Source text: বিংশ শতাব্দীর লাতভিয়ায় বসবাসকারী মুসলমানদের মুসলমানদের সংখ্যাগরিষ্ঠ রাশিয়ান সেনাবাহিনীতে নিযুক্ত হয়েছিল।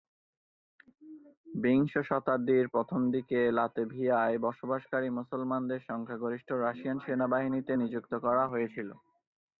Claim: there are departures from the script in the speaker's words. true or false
true